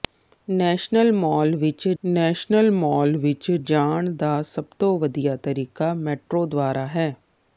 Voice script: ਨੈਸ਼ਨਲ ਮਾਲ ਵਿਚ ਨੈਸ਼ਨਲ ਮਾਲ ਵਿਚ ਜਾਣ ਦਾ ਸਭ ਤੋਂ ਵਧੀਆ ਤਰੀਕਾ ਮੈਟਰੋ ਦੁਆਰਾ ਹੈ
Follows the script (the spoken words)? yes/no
yes